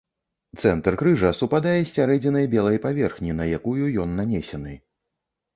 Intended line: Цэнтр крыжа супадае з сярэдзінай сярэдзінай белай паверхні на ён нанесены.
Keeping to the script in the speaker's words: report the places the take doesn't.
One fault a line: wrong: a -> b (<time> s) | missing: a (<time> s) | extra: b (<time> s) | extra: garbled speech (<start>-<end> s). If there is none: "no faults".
missing: сярэдзінай (2.5 s)
extra: якую (3.6 s)